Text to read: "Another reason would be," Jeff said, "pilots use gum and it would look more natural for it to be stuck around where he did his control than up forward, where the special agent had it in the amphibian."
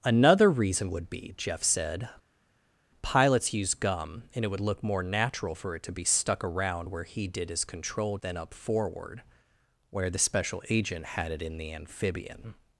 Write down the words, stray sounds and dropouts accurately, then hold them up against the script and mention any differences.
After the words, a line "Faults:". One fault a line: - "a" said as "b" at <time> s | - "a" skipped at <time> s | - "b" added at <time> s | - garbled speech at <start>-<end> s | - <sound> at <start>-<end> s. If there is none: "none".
"Another reason would be," Jeff said, "pilots use gum and it would look more natural for it to be stuck around where he did his control than up forward, where the special agent had it in the amphibian."
Faults:
none